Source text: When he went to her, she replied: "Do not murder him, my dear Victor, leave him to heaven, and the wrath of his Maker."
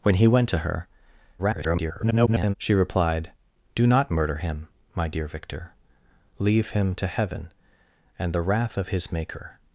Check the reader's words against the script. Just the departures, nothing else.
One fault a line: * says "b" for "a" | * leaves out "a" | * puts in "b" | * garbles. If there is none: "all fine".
* garbles